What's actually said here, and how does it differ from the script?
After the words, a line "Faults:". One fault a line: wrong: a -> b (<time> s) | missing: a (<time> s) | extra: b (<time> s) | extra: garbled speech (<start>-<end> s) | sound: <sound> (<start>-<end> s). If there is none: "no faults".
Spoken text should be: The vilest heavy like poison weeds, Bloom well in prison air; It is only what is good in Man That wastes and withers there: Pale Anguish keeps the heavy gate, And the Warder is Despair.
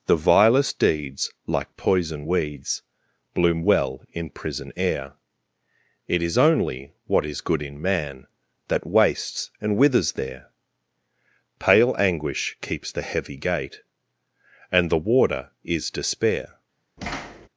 The vilest deeds like poison weeds, Bloom well in prison air; It is only what is good in Man That wastes and withers there: Pale Anguish keeps the heavy gate, And the Warder is Despair.
Faults:
wrong: heavy -> deeds (0.8 s)
sound: thud (17.0-17.5 s)